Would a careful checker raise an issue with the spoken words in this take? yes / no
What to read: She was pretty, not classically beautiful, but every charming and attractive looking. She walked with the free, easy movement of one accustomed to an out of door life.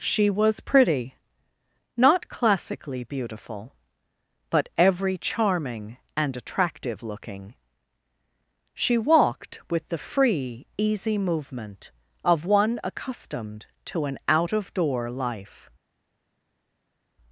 no